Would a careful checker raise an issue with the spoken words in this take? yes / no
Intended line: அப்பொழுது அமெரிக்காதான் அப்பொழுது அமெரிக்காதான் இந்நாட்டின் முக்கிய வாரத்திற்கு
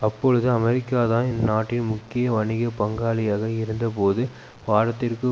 yes